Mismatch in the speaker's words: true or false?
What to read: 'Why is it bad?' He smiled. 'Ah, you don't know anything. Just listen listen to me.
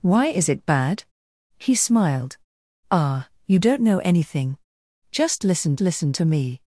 false